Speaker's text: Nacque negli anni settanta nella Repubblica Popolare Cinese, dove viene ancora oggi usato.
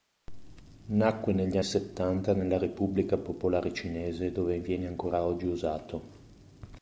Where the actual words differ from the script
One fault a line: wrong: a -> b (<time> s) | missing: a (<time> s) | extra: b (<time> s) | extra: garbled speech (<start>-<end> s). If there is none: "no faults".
missing: anni (1.6 s)